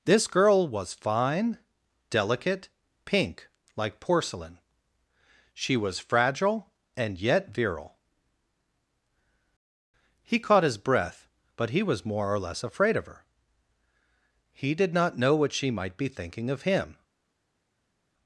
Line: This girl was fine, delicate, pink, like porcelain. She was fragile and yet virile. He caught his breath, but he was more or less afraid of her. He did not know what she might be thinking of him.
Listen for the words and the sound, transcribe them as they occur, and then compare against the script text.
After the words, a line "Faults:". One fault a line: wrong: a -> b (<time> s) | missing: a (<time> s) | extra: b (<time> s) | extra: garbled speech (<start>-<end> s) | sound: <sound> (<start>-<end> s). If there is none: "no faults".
This girl was fine, delicate, pink, like porcelain. She was fragile and yet virile. He caught his breath, but he was more or less afraid of her. He did not know what she might be thinking of him.
Faults:
no faults